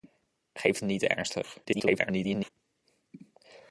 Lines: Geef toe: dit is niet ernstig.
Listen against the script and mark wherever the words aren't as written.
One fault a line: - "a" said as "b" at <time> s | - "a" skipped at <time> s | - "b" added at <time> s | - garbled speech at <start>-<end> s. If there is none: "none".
- "toe dit is" skipped at 0.8 s
- garbled speech at 1.6-2.5 s